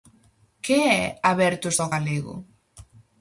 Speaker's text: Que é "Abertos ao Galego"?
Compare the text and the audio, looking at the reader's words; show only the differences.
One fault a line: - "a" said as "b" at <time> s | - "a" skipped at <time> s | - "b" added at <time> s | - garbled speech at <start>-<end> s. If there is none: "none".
none